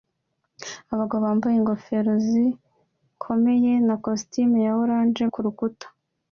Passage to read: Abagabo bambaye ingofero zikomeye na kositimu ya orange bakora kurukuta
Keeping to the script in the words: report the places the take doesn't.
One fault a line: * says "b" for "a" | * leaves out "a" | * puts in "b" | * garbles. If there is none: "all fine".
* leaves out "bakora"